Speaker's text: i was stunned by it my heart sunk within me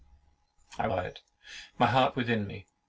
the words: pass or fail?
fail